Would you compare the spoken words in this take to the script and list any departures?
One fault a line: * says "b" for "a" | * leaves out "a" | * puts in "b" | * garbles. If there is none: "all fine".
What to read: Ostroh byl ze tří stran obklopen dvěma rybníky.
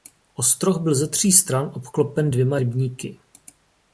all fine